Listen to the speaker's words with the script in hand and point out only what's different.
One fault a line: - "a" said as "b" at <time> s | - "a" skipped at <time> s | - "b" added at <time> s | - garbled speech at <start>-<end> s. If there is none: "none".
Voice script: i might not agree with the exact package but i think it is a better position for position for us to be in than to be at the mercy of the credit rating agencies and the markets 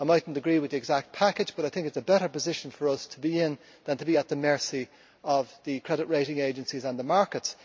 - "position for" skipped at 2.9 s